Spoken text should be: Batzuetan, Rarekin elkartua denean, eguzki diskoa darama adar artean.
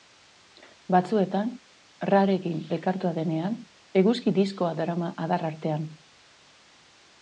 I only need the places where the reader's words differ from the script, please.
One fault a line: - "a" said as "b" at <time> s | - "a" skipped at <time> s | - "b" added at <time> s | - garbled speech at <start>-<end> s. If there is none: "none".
none